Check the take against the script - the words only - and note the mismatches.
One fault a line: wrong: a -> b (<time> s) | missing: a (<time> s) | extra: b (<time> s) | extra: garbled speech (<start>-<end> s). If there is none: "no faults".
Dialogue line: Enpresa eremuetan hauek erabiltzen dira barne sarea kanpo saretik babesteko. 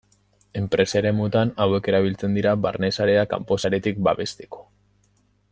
no faults